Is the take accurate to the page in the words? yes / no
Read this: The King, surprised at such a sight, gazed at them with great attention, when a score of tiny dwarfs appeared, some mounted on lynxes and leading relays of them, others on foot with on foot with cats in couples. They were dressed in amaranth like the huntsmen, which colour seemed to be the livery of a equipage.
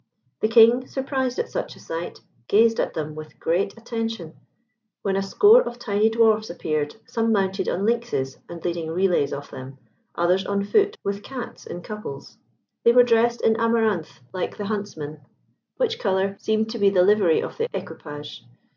no